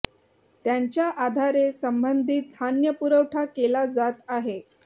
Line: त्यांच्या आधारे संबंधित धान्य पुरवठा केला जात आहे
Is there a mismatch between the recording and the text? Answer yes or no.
no